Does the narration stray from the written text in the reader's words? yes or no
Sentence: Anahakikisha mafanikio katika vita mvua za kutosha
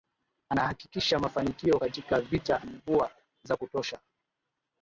no